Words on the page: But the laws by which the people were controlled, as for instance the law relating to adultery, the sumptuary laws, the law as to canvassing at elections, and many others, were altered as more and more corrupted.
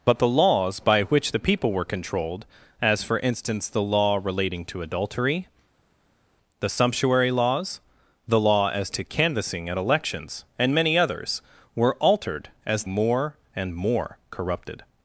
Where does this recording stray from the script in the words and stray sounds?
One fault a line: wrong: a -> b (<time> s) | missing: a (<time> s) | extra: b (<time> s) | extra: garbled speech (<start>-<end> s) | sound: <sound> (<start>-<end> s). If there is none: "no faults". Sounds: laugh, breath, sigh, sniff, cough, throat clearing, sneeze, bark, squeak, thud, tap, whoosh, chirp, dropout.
no faults